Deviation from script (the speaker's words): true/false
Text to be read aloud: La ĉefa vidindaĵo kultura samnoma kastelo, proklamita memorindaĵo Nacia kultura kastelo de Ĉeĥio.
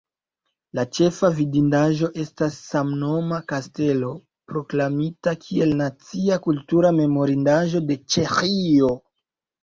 true